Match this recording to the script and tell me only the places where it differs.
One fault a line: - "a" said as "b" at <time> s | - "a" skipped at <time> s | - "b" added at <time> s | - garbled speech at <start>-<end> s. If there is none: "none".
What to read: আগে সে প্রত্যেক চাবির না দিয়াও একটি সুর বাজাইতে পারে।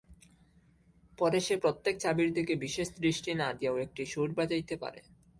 - "আগে" said as "পরে" at 1.2 s
- "দিকে বিশেষ দৃষ্টি" added at 2.3 s